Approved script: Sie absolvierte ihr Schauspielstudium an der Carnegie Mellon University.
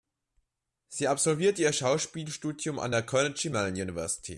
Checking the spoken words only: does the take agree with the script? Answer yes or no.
yes